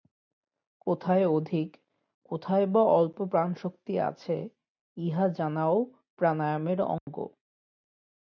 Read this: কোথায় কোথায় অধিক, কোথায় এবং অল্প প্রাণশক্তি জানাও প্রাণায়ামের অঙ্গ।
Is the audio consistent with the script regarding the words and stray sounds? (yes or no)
no